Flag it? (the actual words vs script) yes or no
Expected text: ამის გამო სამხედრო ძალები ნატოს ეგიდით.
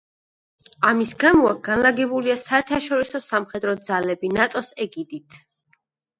yes